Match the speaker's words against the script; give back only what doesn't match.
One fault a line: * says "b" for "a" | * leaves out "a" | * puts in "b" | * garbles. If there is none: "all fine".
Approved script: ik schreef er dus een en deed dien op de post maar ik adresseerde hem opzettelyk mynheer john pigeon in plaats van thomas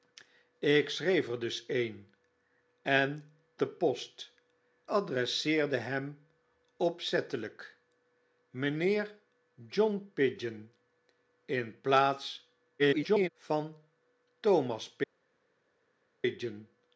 * leaves out "deed dien op"
* leaves out "maar ik"
* garbles